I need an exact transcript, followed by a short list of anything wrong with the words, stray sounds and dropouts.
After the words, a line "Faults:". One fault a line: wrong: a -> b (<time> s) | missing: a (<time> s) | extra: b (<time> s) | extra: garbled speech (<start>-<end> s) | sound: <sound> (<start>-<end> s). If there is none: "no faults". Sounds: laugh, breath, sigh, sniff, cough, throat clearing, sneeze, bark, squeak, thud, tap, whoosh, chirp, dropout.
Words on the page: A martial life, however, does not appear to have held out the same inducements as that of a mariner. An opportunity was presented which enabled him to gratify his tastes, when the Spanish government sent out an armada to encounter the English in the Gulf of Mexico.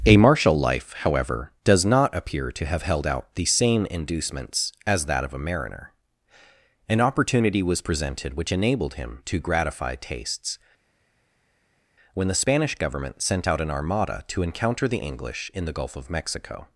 A martial life, however, does not appear to have held out the same inducements as that of a mariner. An opportunity was presented which enabled him to gratify tastes, when the Spanish government sent out an armada to encounter the English in the Gulf of Mexico.
Faults:
missing: his (10.0 s)